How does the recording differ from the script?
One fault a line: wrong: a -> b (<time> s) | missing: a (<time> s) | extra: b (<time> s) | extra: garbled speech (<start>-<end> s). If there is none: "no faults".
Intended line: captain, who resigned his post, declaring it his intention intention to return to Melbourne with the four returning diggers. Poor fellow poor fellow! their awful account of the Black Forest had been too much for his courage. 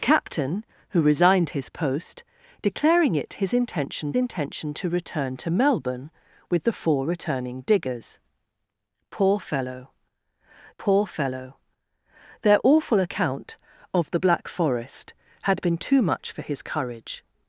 no faults